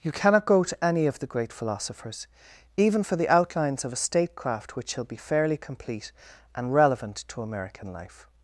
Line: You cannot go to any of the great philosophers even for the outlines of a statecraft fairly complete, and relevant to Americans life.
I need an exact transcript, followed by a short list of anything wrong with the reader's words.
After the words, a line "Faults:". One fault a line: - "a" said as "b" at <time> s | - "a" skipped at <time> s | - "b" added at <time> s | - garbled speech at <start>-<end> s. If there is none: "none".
You cannot go to any of the great philosophers even for the outlines of a statecraft which shall be fairly complete, and relevant to American life.
Faults:
- "which shall be" added at 4.8 s
- "Americans" said as "American" at 7.4 s